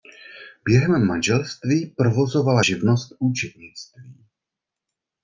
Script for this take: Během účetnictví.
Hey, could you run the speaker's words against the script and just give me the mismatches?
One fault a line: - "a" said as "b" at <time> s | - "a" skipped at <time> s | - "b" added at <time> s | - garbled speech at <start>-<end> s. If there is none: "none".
- "manželství provozovala živnost" added at 1.1 s